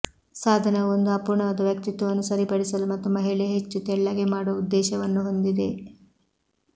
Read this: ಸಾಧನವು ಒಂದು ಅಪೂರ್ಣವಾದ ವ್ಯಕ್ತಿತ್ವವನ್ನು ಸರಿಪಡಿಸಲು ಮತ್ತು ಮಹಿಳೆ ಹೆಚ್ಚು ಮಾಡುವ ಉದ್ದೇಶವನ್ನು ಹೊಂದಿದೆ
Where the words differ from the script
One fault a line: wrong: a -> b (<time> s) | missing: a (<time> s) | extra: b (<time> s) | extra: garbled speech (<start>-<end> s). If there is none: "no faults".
extra: ತೆಳ್ಳಗೆ (3.8 s)